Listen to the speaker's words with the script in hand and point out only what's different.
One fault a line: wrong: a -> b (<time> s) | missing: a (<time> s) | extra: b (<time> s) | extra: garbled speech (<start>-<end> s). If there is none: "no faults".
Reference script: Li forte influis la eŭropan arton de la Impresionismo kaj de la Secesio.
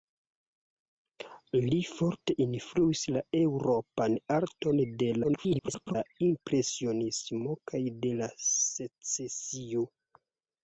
extra: garbled speech (5.2-6.0 s)